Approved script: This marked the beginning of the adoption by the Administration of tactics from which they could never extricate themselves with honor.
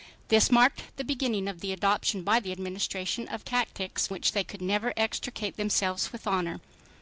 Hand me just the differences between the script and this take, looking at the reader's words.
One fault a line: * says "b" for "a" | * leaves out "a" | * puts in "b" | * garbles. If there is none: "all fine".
* leaves out "from"